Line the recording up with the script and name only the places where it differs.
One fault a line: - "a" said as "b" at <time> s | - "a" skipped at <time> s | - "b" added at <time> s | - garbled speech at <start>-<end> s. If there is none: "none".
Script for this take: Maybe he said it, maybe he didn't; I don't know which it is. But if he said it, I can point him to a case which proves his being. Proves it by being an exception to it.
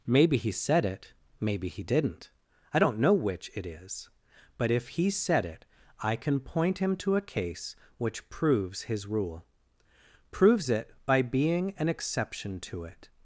- "being" said as "rule" at 9.1 s